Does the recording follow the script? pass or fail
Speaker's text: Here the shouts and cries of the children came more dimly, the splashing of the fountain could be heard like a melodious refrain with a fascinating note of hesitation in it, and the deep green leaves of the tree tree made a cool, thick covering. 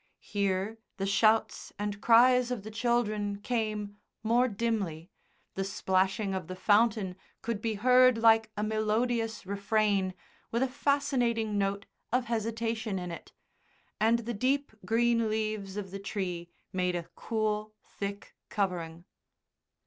fail